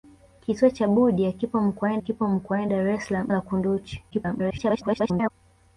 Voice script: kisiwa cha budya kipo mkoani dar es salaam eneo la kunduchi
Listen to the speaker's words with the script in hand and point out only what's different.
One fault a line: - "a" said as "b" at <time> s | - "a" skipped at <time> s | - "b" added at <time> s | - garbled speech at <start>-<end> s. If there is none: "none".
- "kipo mkoani" added at 2.0 s
- "eneo" skipped at 3.3 s
- garbled speech at 4.1-5.3 s